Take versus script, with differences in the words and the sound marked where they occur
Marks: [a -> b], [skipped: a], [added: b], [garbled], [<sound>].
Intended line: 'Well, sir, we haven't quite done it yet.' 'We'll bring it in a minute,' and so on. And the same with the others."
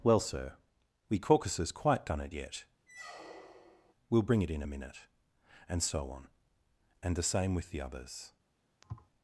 'Well, sir, we [haven't -> caucuses] quite done it yet.' [squeak] 'We'll bring it in a minute,' and so on. And the same with the others." [thud]